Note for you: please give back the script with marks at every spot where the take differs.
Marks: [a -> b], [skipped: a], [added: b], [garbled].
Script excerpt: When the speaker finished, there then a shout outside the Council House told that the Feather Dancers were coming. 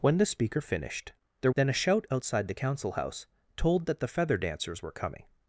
When the speaker finished, there then a shout outside the Council House told that the Feather Dancers were coming.